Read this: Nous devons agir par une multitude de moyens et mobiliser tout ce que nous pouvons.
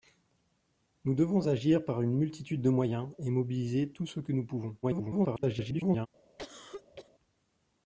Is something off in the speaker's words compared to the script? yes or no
yes